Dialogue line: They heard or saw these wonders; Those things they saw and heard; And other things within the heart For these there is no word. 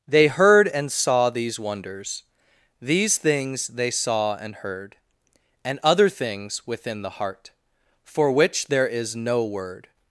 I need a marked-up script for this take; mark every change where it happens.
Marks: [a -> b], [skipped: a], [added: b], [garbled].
They heard [or -> and] saw these wonders; [Those -> These] things they saw and heard; And other things within the heart For [these -> which] there is no word.